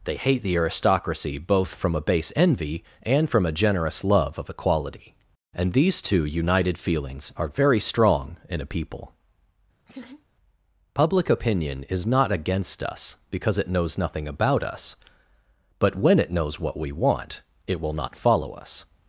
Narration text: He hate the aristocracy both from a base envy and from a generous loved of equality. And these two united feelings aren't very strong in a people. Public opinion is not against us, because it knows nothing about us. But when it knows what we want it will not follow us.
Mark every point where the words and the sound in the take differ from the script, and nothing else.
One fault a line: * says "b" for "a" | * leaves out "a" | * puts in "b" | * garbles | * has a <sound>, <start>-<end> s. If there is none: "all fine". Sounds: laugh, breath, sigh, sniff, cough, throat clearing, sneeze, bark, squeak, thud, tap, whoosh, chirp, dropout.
* says "They" for "He"
* says "love" for "loved"
* says "are" for "aren't"
* has a laugh, 9.9-10.2 s